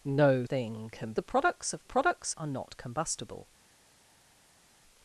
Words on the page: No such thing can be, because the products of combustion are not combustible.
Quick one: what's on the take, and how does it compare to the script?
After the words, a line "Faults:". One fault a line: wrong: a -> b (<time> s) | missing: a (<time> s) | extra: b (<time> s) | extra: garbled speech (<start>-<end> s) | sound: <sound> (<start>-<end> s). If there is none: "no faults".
No thing can the products of products are not combustible.
Faults:
missing: such (0.5 s)
missing: be because (1.1 s)
wrong: combustion -> products (1.8 s)